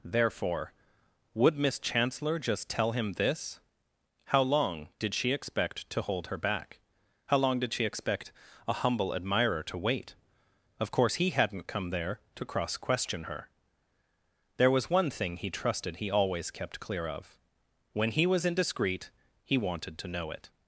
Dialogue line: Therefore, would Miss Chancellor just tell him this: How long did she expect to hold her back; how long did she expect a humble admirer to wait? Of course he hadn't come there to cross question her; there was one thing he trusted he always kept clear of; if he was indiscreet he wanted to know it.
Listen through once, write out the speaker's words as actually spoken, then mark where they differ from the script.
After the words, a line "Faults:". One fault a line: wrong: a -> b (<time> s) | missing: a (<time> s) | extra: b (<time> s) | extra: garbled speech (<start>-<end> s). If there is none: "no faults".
Therefore, would Miss Chancellor just tell him this: How long did she expect to hold her back; how long did she expect a humble admirer to wait? Of course he hadn't come there to cross question her; there was one thing he trusted he always kept clear of; when he was indiscreet he wanted to know it.
Faults:
wrong: if -> when (17.9 s)